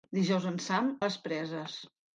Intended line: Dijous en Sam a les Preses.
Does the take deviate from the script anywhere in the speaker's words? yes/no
no